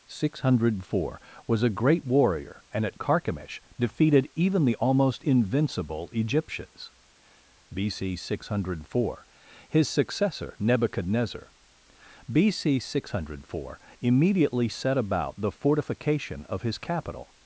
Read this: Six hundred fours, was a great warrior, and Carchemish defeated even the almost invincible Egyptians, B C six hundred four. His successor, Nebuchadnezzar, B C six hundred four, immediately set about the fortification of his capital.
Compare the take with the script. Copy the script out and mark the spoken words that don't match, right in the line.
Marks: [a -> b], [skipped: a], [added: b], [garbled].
Six hundred [fours, -> four] was a great warrior, and [added: at] Carchemish defeated even the almost invincible Egyptians, B C six hundred four. His successor, Nebuchadnezzar, B C six hundred four, immediately set about the fortification of his capital.